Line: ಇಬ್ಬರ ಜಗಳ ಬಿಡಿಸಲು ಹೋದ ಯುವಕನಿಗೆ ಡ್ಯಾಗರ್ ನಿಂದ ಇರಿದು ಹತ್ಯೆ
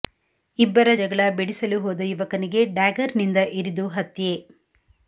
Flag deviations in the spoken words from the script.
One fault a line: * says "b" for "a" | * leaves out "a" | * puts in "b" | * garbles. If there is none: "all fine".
all fine